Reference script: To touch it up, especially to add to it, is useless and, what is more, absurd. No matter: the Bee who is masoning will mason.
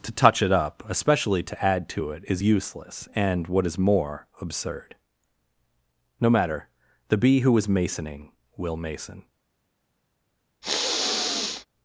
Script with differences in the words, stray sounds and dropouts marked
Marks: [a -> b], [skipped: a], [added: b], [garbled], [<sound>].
To touch it up, especially to add to it, is useless and, what is more, absurd. No matter: the Bee who is masoning will mason. [sniff]